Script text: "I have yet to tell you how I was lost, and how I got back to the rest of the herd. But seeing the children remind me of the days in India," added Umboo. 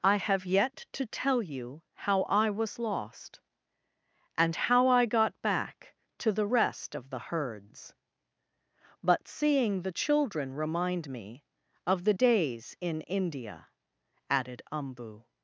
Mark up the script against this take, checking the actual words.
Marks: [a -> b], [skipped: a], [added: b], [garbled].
"I have yet to tell you how I was lost, and how I got back to the rest of the [herd. -> herds] But seeing the children remind me of the days in India," added Umboo.